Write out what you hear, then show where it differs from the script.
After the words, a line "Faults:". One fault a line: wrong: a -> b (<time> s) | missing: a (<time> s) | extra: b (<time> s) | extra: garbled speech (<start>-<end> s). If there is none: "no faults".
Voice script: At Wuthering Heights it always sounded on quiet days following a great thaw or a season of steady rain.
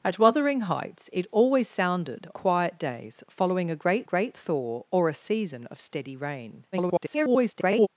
At Wuthering Heights it always sounded quiet days following a great great thaw or a season of steady rain. [garbled]
Faults:
missing: on (2.3 s)
extra: great (4.0 s)
extra: garbled speech (6.7-7.9 s)